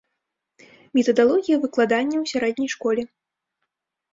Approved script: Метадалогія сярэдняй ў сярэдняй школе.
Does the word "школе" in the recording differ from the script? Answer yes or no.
no